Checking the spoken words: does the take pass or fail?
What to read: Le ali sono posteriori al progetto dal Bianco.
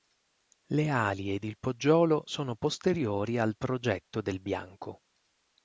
fail